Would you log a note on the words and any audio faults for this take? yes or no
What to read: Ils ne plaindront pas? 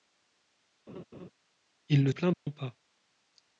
yes